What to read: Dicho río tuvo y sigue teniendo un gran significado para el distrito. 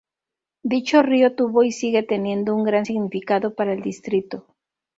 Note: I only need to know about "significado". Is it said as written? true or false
true